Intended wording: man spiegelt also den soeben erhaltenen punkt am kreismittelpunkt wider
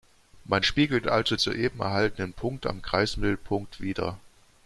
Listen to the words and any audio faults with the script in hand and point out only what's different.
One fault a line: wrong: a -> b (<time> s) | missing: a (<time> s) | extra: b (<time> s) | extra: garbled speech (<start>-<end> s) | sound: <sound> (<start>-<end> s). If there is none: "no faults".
missing: den (1.3 s)